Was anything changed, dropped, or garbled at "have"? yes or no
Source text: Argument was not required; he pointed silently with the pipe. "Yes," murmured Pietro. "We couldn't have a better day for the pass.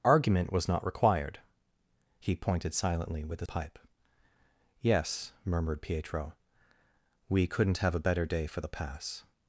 no